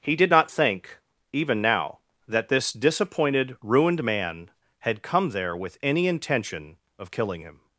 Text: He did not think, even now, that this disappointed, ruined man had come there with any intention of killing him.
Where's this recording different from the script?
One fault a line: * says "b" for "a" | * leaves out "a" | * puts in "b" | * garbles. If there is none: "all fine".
all fine